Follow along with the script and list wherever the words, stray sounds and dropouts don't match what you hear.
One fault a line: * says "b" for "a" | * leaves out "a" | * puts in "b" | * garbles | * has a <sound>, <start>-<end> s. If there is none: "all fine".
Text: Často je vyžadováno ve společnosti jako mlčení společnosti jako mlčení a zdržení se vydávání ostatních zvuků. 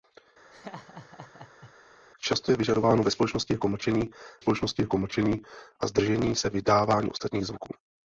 * has a laugh, 0.5-1.7 s